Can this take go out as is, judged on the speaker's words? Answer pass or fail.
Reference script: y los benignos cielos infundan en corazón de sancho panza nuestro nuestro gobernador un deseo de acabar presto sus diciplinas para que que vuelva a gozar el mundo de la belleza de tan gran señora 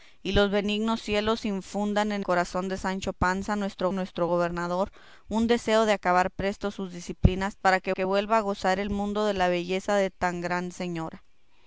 pass